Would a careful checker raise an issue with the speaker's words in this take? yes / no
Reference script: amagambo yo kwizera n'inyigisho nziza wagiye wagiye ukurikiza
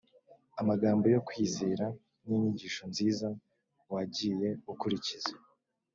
yes